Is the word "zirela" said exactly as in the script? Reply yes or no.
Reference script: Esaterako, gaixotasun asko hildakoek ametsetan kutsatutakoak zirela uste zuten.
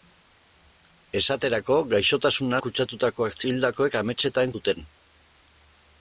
no